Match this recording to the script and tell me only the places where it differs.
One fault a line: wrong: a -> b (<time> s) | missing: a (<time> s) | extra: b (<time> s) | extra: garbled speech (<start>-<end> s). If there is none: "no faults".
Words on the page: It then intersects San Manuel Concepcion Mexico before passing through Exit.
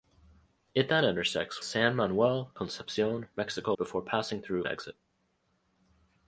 no faults